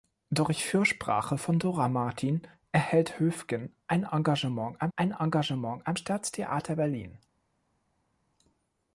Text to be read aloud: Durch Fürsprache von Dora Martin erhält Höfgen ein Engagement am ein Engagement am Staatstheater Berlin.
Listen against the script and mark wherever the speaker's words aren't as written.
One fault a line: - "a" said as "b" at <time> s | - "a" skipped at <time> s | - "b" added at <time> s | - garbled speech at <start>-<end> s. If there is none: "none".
none